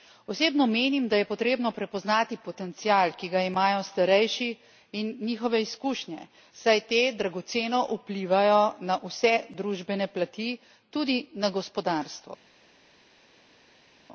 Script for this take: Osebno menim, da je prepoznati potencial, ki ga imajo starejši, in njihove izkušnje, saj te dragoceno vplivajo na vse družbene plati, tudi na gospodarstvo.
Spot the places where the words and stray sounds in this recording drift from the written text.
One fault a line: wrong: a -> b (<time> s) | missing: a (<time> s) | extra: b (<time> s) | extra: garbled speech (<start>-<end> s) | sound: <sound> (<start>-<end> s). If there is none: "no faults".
extra: potrebno (1.2 s)